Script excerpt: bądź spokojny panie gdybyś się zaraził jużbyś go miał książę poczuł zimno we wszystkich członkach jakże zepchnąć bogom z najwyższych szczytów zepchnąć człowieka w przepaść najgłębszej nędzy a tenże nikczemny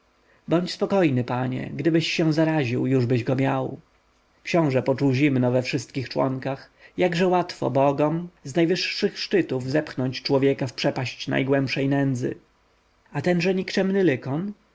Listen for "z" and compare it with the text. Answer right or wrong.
right